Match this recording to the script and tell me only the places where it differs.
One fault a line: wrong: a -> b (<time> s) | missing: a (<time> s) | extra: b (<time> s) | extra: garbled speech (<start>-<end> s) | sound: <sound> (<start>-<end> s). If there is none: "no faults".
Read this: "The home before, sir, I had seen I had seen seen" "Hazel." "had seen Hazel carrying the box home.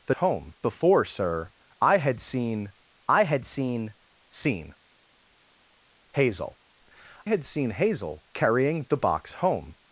no faults